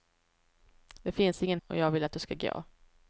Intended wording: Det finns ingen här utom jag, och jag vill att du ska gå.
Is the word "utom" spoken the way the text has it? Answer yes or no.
no